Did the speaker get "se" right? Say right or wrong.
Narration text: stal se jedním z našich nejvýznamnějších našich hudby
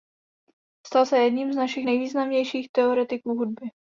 right